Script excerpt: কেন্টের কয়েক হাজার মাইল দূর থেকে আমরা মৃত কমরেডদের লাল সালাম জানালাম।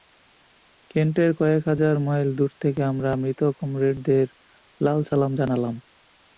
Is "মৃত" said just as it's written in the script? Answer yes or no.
yes